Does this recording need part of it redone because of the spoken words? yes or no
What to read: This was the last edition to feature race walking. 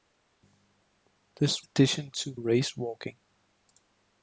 yes